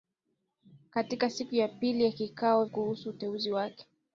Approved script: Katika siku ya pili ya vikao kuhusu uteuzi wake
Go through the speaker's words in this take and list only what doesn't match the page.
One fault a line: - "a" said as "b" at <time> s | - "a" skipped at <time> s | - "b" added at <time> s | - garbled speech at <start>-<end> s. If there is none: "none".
none